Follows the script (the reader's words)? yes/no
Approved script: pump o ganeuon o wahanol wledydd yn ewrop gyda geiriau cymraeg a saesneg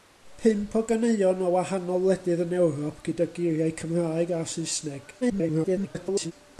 no